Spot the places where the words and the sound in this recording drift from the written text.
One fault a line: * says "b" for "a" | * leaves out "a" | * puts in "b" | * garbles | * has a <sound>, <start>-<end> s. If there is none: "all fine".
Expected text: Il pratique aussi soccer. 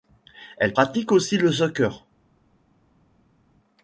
* says "Elle" for "Il"
* puts in "le"